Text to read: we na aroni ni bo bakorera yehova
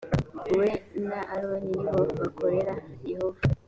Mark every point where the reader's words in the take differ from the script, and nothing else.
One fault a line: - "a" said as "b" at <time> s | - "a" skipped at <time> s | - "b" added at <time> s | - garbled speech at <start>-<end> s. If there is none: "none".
none